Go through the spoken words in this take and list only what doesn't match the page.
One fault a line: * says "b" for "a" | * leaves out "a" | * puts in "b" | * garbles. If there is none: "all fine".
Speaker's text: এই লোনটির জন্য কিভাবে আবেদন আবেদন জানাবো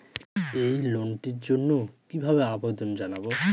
* leaves out "আবেদন"